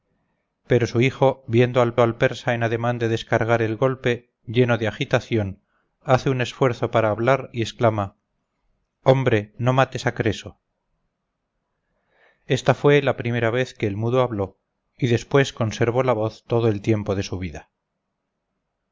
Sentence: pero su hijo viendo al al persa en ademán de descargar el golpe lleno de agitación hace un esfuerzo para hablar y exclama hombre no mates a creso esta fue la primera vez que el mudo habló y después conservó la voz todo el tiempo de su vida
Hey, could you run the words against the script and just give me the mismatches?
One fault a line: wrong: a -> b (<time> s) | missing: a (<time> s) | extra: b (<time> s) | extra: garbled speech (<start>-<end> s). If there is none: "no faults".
no faults